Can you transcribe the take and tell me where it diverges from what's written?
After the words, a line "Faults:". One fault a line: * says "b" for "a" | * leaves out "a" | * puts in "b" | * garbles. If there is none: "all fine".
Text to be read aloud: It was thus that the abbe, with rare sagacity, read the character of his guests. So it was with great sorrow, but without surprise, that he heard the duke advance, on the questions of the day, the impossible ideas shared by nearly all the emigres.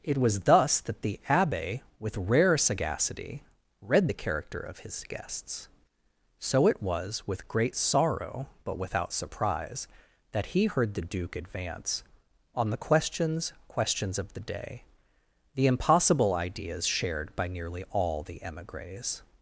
It was thus that the abbe, with rare sagacity, read the character of his guests. So it was with great sorrow, but without surprise, that he heard the duke advance, on the questions questions of the day, the impossible ideas shared by nearly all the emigres.
Faults:
* puts in "questions"